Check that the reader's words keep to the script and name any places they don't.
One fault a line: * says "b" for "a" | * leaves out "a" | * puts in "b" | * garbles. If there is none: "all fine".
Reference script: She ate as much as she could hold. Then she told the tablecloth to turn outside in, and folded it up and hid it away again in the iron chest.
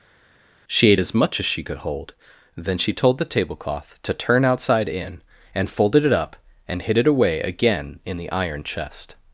all fine